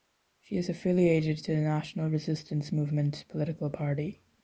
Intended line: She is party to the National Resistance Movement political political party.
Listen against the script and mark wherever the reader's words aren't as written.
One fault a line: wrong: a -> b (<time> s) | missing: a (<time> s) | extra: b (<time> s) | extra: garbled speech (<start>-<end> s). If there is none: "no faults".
wrong: party -> affiliated (0.7 s)
missing: political (3.7 s)